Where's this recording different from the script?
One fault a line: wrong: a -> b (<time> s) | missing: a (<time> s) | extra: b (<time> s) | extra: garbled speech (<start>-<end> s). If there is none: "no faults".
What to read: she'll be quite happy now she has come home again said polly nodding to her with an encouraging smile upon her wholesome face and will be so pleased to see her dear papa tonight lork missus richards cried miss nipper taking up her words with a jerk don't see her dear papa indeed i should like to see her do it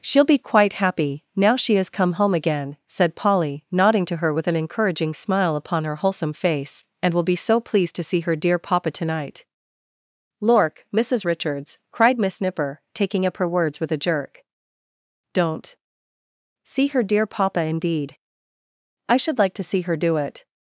no faults